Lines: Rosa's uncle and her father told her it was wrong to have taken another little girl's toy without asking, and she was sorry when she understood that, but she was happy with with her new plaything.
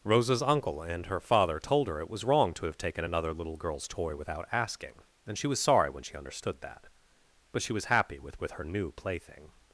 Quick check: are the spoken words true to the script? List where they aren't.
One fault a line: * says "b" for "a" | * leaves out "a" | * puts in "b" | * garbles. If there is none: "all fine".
all fine